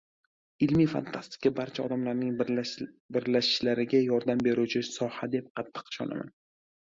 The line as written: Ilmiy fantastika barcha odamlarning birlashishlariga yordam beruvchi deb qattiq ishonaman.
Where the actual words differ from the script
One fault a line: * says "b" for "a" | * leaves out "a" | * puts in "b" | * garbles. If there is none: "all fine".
* puts in "soha"